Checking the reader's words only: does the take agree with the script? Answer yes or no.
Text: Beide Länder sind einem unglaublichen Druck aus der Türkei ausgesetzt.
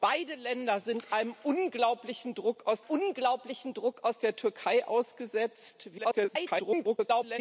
no